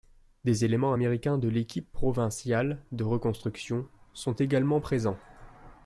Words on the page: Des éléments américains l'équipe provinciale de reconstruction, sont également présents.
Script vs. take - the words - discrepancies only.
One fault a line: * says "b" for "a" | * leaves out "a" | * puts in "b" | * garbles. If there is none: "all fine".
* puts in "de"